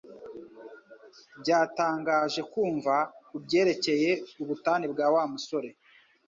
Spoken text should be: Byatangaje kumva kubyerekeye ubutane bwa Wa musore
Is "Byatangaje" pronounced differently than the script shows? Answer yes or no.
no